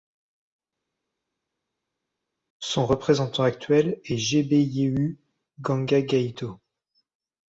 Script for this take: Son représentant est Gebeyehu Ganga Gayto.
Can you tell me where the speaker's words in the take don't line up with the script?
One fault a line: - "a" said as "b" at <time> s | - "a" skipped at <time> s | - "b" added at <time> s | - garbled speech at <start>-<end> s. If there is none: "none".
- "actuel" added at 3.4 s